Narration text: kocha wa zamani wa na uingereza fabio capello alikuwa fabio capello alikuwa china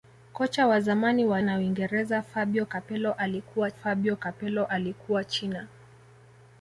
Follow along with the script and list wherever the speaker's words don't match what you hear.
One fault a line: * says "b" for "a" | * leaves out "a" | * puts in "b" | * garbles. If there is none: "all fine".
all fine